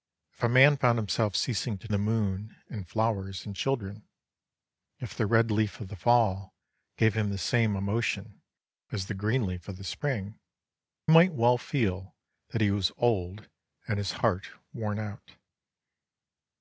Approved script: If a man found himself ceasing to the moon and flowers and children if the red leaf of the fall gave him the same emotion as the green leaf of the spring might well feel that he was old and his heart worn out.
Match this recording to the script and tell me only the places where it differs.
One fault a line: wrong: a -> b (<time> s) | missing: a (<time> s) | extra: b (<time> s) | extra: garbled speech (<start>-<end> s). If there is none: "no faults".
no faults